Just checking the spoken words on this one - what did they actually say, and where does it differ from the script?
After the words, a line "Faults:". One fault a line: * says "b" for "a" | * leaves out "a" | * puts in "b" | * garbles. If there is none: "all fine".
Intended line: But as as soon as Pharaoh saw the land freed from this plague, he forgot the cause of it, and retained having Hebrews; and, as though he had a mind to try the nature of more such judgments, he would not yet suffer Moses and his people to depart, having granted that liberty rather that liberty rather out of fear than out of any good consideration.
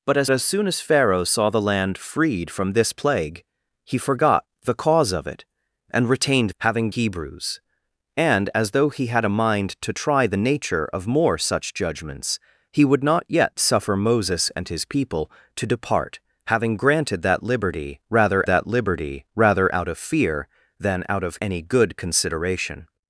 But as as soon as Pharaoh saw the land freed from this plague, he forgot the cause of it, and retained having Hebrews; and, as though he had a mind to try the nature of more such judgments, he would not yet suffer Moses and his people to depart, having granted that liberty rather that liberty rather out of fear than out of any good consideration.
Faults:
all fine